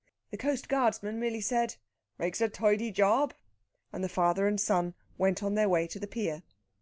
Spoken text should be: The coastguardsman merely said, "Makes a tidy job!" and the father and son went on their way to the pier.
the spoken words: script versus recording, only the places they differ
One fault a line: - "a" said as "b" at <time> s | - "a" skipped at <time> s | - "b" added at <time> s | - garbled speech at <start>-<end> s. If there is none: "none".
none